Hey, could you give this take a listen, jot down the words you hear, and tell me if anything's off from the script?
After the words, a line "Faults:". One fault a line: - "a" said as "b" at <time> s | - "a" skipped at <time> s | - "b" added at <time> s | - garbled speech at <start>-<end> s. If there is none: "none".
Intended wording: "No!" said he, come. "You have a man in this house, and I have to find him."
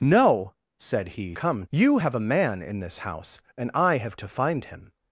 "No!" said he, come. "You have a man in this house, and I have to find him."
Faults:
none